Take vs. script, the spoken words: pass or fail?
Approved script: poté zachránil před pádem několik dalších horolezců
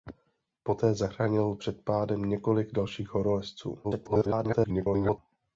fail